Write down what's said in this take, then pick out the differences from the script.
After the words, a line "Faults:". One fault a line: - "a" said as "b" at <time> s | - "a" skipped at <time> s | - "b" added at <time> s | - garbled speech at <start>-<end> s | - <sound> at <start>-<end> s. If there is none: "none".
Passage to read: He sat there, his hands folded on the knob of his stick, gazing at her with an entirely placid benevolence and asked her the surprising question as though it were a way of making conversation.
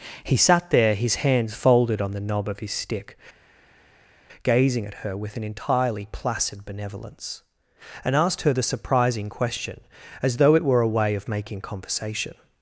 He sat there, his hands folded on the knob of his stick, gazing at her with an entirely placid benevolence and asked her the surprising question as though it were a way of making conversation.
Faults:
none